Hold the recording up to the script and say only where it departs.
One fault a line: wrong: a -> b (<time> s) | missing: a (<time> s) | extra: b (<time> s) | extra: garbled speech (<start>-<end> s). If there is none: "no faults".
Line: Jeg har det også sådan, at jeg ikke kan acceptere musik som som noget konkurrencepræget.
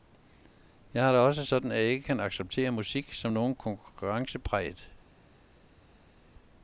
missing: som (3.3 s)